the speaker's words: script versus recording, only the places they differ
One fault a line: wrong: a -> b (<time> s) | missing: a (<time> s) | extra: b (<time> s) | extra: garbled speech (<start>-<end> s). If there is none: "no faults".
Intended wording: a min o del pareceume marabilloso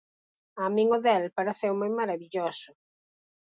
no faults